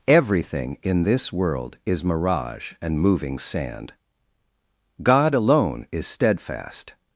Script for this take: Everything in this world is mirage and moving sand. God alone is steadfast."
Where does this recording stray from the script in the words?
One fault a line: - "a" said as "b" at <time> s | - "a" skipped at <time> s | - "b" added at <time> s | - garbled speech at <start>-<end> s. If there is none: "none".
none